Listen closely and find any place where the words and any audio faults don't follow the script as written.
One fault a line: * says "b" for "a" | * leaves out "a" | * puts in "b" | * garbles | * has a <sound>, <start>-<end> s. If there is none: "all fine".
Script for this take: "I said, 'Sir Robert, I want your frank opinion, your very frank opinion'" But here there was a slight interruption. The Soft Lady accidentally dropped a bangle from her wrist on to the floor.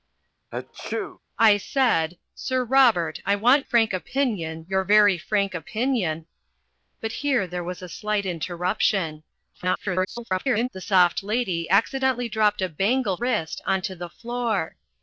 * has a sneeze, 0.5-1.2 s
* leaves out "your"
* garbles
* leaves out "from her"